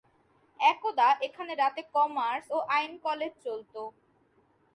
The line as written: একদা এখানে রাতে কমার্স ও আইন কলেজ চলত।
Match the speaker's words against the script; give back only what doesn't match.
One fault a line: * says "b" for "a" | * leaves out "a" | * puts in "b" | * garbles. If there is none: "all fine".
all fine